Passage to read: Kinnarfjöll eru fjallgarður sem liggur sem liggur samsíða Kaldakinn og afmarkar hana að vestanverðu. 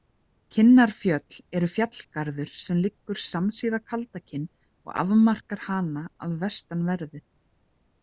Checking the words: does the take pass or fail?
fail